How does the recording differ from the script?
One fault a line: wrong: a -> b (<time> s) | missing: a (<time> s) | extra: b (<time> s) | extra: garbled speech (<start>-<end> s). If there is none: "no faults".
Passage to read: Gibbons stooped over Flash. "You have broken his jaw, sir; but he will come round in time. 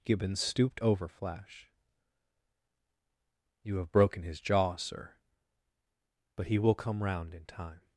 no faults